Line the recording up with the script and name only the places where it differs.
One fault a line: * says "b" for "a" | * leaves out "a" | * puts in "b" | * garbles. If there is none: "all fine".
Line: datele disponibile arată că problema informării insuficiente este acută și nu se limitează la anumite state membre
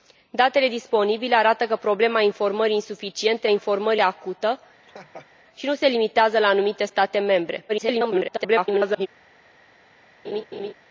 * says "informării" for "este"
* garbles